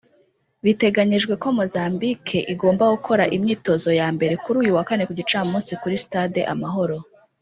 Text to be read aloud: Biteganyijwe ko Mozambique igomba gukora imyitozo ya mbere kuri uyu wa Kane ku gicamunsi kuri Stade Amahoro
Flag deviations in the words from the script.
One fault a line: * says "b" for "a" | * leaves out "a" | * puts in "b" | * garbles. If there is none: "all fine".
all fine